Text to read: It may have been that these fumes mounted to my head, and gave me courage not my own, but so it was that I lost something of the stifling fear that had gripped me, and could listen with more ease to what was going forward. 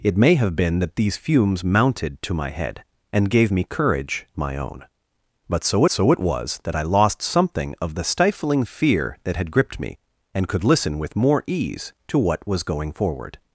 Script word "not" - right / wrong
wrong